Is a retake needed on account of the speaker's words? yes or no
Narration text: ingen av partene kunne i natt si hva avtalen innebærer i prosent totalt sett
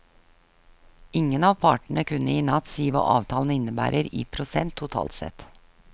no